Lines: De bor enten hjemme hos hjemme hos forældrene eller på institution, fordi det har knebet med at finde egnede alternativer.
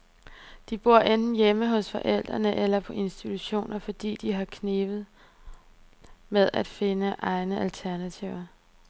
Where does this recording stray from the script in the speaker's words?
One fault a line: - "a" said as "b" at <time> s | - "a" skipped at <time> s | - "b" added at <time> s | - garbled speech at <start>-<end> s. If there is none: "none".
- "hjemme hos" skipped at 1.9 s